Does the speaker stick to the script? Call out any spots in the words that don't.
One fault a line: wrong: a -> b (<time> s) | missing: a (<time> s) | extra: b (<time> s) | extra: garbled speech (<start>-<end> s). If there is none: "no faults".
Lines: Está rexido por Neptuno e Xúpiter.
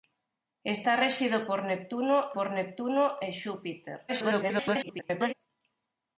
extra: por Neptuno (2.3 s)
extra: garbled speech (4.1-5.3 s)